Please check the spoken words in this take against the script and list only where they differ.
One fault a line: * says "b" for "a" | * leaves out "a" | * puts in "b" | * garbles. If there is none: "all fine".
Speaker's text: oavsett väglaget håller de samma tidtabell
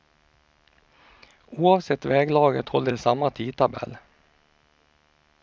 all fine